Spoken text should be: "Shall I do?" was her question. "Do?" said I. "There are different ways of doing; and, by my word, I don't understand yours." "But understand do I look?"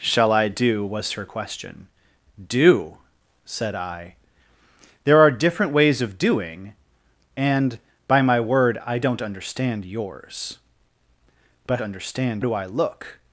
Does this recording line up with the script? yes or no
yes